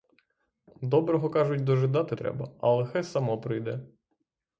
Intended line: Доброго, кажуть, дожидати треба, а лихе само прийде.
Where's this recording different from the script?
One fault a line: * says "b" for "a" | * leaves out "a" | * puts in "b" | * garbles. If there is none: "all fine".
all fine